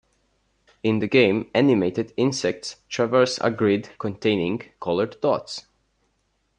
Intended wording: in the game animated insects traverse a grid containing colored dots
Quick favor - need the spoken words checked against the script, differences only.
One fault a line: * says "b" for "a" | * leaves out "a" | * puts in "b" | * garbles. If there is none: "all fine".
all fine